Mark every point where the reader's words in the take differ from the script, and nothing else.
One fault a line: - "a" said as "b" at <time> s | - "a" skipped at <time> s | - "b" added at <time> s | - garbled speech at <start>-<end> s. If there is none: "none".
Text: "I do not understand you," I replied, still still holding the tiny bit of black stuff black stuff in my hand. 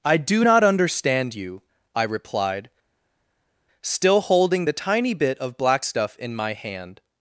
- "still" skipped at 4.2 s
- "black stuff" skipped at 6.2 s